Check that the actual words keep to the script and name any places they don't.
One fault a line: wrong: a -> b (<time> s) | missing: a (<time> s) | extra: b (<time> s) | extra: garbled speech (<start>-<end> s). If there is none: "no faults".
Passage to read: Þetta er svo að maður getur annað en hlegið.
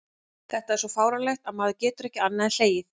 extra: fáránlegt (0.9 s)
extra: ekki (2.1 s)